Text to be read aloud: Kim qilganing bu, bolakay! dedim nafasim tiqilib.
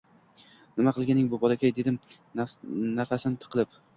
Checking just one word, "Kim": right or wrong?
wrong